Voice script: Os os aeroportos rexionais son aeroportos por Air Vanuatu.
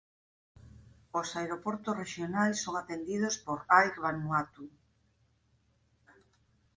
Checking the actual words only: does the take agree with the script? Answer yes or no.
no